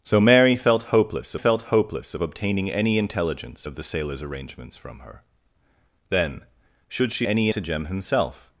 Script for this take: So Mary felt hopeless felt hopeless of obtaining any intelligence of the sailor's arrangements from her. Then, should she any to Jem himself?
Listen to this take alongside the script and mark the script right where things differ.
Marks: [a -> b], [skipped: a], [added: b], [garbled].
So Mary felt hopeless felt hopeless of obtaining any intelligence of the sailor's arrangements from her. Then, should she any to Jem himself?